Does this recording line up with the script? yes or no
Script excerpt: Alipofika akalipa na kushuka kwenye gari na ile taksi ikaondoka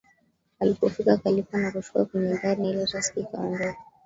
no